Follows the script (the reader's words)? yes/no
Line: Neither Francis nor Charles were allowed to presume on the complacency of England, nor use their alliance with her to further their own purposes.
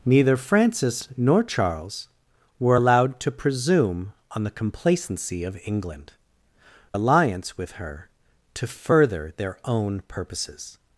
no